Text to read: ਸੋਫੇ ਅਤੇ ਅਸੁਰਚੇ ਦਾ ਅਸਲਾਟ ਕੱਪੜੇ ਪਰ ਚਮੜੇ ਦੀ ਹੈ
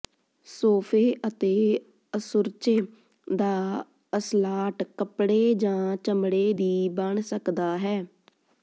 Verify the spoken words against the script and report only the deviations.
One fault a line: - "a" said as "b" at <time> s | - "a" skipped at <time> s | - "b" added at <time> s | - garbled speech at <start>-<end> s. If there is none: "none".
- "ਪਰ" said as "ਜਾਂ" at 5.6 s
- "ਬਣ ਸਕਦਾ" added at 6.9 s